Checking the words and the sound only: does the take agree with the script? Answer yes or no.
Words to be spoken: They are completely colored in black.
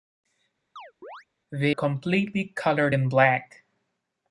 no